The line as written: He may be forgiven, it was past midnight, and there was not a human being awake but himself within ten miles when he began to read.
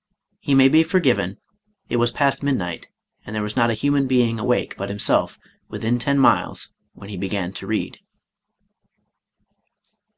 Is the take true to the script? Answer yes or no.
yes